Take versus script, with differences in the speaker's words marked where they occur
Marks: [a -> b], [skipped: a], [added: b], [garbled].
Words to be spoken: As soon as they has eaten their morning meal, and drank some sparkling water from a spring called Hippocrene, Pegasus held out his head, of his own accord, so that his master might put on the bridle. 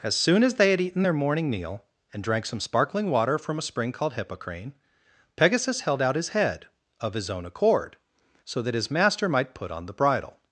As soon as they [has -> had] eaten their morning meal, and drank some sparkling water from a spring called Hippocrene, Pegasus held out his head, of his own accord, so that his master might put on the bridle.